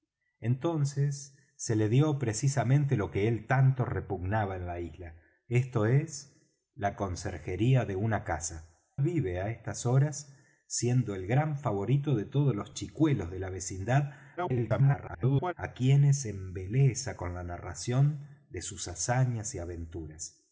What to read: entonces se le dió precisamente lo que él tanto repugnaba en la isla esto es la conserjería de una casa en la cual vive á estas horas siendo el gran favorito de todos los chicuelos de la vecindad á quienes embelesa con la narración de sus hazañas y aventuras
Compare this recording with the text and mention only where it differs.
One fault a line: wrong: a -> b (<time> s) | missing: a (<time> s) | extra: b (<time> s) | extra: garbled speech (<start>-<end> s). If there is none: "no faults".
missing: en la cual (8.8 s)
extra: garbled speech (14.4-15.5 s)